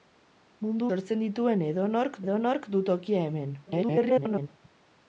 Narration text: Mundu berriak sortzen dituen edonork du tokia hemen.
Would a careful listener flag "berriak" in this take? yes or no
yes